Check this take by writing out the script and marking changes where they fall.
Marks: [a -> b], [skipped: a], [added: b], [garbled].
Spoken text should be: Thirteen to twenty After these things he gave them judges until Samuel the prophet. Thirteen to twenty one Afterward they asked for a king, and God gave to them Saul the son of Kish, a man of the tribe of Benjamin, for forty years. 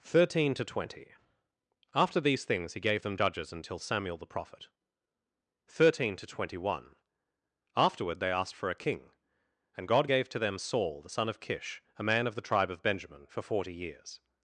Thirteen to twenty After these things he gave them judges until Samuel the prophet. Thirteen to twenty one Afterward they asked for a king, and God gave to them Saul the son of Kish, a man of the tribe of Benjamin, for forty years.